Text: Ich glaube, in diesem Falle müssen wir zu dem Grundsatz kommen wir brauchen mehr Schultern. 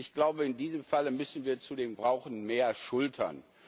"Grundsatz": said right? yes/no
no